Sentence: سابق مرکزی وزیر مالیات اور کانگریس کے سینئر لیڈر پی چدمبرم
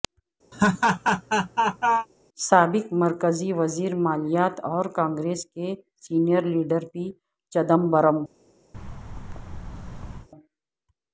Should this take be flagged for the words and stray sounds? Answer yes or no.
yes